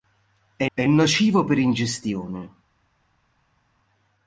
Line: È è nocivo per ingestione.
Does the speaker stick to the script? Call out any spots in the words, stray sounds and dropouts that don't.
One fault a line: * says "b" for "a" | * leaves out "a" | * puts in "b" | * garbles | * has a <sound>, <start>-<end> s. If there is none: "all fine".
all fine